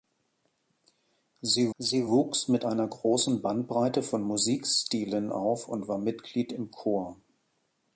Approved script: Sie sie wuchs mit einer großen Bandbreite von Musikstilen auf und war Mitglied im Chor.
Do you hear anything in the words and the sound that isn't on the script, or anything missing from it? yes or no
no